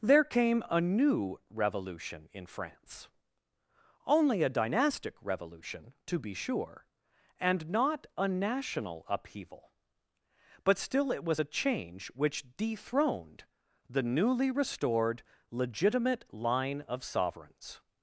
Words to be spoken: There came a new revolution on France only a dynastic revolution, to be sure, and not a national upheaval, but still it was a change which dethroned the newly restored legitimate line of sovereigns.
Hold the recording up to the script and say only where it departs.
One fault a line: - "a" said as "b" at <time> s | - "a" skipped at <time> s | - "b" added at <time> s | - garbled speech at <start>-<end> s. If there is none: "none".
- "on" said as "in" at 2.3 s